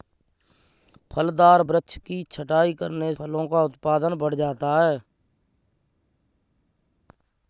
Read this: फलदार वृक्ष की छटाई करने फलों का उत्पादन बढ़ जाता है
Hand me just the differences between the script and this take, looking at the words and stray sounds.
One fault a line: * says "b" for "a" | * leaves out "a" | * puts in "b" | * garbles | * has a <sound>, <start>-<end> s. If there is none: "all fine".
all fine